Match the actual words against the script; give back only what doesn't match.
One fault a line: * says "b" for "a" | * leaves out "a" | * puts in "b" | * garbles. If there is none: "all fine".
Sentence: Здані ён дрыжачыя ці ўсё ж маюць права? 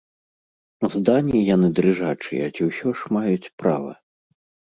* says "яны" for "ён"